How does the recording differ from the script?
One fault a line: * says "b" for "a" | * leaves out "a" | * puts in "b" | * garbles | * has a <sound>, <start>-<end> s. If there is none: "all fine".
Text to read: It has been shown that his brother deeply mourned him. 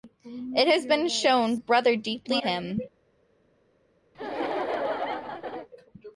* leaves out "that his"
* leaves out "mourned"
* has a laugh, 4.1-5.7 s